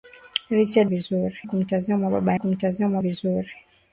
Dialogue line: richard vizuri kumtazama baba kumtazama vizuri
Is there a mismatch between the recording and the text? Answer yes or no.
no